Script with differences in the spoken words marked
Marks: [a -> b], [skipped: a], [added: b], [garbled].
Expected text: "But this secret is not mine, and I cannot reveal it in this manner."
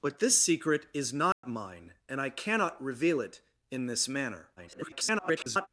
"But this secret is not mine, and I cannot reveal it in this manner." [garbled]